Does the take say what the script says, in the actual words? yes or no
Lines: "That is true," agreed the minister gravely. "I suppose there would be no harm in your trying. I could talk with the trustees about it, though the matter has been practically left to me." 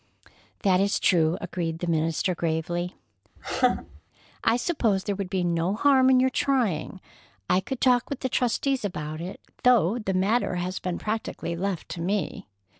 yes